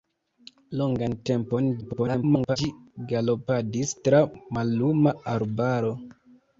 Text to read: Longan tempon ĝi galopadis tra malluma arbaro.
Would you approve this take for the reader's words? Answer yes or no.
no